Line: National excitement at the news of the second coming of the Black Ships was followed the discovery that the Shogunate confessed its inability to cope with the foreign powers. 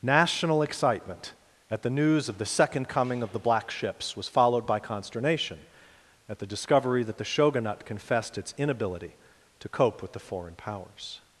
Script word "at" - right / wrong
right